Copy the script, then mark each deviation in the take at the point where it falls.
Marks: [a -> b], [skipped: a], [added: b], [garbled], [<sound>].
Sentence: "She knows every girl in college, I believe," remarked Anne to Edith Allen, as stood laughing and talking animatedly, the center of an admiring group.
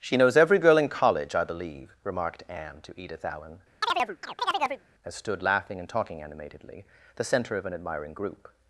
"She knows every girl in college, I believe," remarked Anne to Edith Allen, [chirp] as stood laughing and talking animatedly, the center of an admiring group.